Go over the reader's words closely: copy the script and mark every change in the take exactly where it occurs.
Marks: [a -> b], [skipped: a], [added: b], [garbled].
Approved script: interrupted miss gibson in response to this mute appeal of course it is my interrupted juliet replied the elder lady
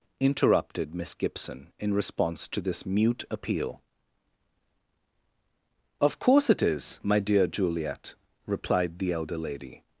interrupted miss gibson in response to this mute appeal of course it is my [interrupted -> dear] juliet replied the elder lady